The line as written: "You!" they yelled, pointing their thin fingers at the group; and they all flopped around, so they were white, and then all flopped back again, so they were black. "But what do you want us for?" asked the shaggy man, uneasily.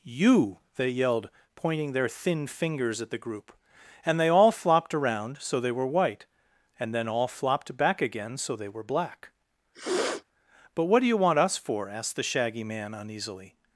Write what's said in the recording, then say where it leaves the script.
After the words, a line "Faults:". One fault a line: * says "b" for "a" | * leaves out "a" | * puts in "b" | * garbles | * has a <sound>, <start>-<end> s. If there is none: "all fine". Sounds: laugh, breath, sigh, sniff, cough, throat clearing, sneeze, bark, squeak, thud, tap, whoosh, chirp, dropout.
"You!" they yelled, pointing their thin fingers at the group; and they all flopped around, so they were white, and then all flopped back again, so they were black. "But what do you want us for?" asked the shaggy man, uneasily.
Faults:
* has a sniff, 9.7-10.2 s